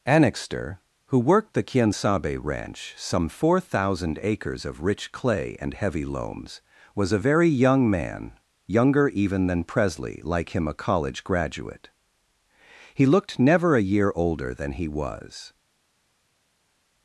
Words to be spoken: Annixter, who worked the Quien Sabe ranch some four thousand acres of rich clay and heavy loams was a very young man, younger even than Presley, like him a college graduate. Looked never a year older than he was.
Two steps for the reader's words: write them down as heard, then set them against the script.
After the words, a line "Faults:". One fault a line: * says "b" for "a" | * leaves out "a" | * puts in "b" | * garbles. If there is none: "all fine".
Annixter, who worked the Quien Sabe ranch some four thousand acres of rich clay and heavy loams was a very young man, younger even than Presley, like him a college graduate. He looked never a year older than he was.
Faults:
* puts in "He"